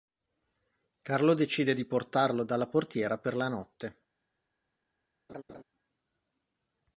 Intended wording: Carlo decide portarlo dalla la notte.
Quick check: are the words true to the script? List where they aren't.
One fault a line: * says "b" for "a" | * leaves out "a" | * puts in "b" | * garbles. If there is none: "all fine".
* puts in "di"
* puts in "portiera per"